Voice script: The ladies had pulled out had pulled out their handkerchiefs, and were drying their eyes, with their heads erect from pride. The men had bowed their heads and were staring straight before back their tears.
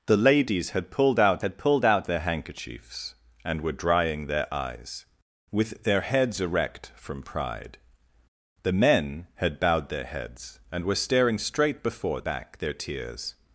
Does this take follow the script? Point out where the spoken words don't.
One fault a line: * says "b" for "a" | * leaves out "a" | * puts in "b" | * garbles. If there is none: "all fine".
all fine